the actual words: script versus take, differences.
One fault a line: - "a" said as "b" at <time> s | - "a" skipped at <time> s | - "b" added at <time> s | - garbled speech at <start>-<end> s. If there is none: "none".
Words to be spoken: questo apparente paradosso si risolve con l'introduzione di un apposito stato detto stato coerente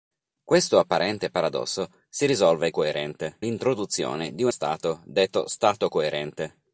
- "con" said as "coerente" at 2.7 s
- "apposito" skipped at 4.5 s